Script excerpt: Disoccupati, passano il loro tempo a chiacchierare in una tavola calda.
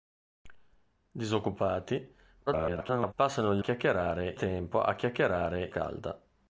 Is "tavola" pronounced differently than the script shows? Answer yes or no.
yes